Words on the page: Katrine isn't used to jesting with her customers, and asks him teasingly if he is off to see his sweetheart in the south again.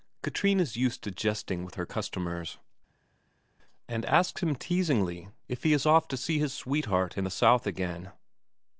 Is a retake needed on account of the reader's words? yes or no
yes